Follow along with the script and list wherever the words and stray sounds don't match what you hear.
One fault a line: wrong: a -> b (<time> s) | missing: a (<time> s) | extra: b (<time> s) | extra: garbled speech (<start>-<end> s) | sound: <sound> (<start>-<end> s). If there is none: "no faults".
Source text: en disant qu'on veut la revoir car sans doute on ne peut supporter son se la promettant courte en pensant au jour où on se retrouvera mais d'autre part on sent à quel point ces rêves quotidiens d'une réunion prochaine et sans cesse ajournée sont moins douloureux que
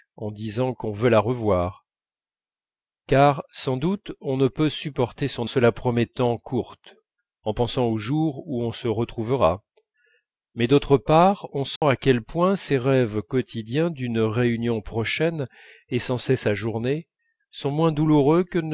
sound: dropout (11.8-11.8 s)